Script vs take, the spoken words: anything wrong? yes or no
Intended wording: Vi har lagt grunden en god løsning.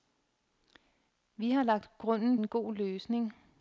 no